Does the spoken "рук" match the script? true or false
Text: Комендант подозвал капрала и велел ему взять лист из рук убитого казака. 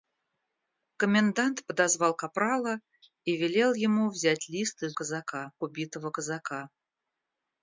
false